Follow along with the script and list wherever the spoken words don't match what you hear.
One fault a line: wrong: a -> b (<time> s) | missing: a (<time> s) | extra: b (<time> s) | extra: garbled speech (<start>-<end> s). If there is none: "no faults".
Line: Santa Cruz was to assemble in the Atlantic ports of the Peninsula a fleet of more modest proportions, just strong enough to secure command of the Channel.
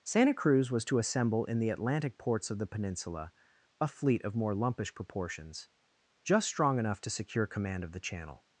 wrong: modest -> lumpish (4.5 s)